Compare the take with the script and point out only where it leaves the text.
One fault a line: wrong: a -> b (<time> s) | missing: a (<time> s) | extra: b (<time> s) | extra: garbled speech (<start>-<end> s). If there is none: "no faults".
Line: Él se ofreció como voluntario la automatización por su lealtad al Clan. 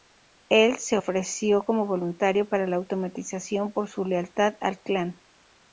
extra: para (2.5 s)